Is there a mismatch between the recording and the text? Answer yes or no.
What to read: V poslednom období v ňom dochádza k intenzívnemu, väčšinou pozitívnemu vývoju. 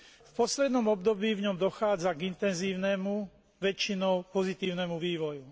no